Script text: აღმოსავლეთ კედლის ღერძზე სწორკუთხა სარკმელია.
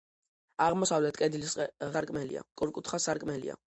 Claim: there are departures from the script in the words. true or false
true